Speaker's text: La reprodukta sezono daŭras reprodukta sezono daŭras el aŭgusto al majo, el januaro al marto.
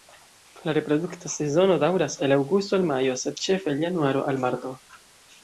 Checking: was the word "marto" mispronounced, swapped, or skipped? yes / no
no